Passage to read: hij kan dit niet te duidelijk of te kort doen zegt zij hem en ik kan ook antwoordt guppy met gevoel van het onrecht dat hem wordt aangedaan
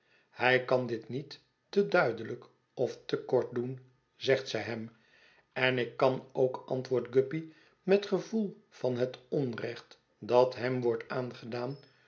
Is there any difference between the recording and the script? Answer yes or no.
no